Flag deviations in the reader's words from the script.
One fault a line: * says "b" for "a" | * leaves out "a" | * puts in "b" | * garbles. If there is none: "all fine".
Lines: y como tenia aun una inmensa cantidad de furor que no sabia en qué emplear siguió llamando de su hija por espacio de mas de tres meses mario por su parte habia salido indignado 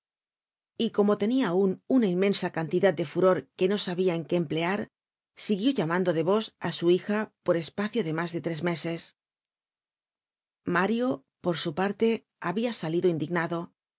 * puts in "vos á"